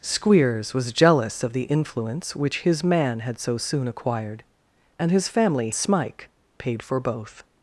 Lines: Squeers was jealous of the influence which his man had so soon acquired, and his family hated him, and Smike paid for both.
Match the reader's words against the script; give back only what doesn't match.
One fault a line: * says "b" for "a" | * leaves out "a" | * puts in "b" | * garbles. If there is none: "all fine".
* leaves out "hated him and"